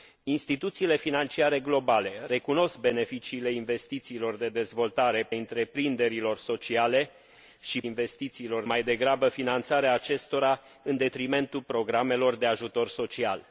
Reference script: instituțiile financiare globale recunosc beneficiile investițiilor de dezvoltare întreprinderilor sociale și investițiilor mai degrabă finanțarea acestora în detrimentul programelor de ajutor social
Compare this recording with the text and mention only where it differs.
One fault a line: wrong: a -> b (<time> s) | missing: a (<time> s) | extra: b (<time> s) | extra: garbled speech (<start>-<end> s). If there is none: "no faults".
no faults